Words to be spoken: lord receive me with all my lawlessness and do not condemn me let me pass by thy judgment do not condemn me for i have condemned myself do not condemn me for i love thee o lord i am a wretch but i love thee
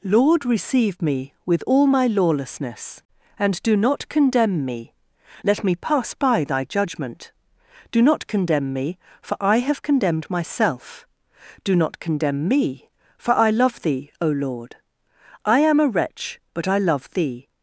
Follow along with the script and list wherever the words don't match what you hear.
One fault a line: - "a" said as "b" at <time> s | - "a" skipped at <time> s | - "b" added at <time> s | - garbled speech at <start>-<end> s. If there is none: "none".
none